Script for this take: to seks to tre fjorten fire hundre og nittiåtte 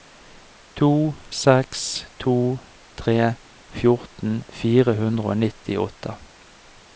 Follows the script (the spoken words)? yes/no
yes